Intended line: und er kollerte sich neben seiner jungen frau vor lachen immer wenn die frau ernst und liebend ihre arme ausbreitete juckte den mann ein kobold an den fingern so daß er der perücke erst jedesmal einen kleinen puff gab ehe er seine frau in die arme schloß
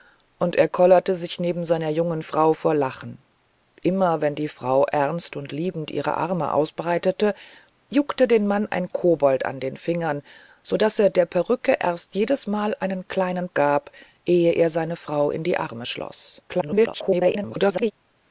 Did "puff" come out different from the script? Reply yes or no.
yes